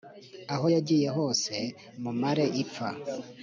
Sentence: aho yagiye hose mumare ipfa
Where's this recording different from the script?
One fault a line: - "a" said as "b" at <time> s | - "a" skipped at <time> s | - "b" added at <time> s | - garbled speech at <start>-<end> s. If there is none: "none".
none